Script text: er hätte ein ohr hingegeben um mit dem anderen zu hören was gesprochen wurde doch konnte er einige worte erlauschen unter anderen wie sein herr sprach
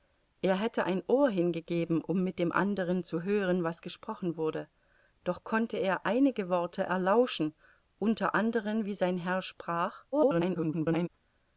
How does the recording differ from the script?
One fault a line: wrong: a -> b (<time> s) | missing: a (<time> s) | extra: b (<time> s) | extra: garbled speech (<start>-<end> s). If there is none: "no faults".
extra: garbled speech (10.1-11.1 s)